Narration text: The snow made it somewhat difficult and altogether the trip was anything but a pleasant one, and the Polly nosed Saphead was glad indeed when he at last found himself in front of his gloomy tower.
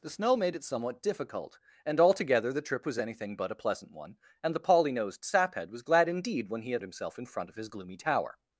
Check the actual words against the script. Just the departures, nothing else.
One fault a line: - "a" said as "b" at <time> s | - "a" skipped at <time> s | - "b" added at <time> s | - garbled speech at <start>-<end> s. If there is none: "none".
- "last found" skipped at 6.8 s